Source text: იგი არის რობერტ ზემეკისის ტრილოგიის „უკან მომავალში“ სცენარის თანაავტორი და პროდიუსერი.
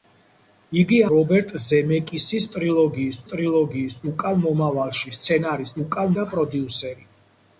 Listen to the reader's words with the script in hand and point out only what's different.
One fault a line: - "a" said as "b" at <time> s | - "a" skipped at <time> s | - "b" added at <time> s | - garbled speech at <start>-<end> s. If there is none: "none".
- "არის" skipped at 1.0 s
- "ტრილოგიის" added at 3.3 s
- "თანაავტორი" said as "უკან" at 5.8 s